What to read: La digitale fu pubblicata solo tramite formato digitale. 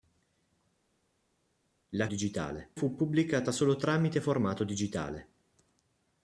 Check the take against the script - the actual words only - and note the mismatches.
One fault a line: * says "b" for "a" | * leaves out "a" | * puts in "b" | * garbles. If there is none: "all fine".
all fine